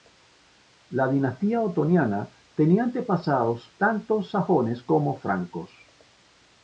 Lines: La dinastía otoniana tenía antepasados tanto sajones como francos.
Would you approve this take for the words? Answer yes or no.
yes